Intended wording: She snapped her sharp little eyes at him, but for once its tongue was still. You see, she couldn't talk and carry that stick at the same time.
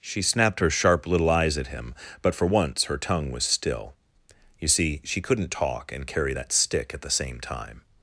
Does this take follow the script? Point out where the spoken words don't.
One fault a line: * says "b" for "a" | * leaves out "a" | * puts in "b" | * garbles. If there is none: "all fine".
* says "her" for "its"